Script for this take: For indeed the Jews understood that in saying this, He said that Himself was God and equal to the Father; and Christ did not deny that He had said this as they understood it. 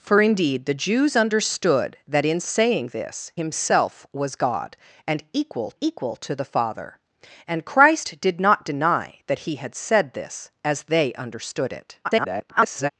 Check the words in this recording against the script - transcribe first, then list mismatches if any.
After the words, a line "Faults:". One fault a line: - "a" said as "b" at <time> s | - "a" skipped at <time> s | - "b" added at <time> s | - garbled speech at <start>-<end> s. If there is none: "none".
For indeed the Jews understood that in saying this, Himself was God and equal equal to the Father; and Christ did not deny that He had said this as they understood it. [garbled]
Faults:
- "He said that" skipped at 3.3 s
- "equal" added at 5.8 s
- garbled speech at 12.0-12.9 s